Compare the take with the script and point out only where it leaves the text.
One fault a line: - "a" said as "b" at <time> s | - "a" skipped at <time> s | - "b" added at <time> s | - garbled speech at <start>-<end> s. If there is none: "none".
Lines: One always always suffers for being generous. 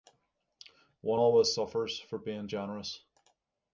- "always" skipped at 1.5 s